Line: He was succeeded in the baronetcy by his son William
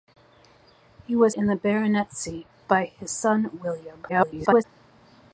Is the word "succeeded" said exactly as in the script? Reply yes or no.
no